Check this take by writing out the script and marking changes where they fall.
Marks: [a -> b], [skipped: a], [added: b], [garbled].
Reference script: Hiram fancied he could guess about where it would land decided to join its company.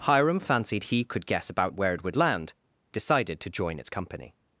Hiram fancied he could guess about where it would land decided to join its company.